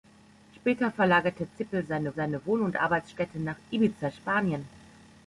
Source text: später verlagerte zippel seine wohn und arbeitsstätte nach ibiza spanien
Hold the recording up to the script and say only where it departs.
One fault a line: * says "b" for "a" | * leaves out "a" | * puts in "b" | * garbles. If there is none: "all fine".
* puts in "seine"